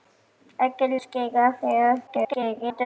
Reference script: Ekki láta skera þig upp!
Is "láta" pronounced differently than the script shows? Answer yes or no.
yes